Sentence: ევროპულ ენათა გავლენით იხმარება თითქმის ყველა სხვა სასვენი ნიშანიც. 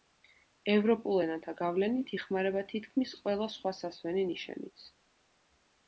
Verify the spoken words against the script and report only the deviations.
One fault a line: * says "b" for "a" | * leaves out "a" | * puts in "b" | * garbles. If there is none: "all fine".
all fine